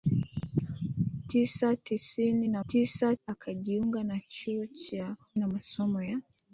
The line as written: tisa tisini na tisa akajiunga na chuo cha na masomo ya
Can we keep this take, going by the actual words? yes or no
yes